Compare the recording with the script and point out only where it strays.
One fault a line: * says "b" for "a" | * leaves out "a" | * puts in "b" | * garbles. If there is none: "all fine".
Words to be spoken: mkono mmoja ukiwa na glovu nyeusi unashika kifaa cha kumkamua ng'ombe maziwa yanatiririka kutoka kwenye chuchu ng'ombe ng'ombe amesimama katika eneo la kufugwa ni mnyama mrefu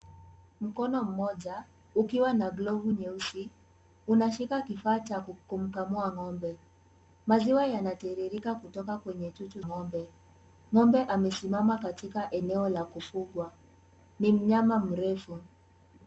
all fine